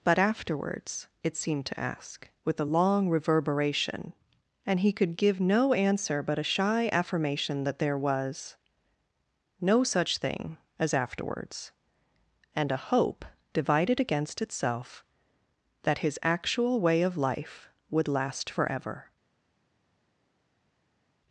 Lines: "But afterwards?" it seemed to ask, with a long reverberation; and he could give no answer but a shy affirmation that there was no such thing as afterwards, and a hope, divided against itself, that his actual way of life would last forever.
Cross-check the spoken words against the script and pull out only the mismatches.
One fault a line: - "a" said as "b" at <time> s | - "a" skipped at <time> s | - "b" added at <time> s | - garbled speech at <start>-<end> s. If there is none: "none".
none